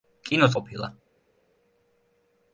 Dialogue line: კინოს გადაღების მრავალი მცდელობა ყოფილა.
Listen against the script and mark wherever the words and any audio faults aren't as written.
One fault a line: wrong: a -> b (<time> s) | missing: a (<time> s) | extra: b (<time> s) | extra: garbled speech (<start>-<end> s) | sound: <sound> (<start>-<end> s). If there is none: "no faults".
missing: გადაღების მრავალი მცდელობა (0.6 s)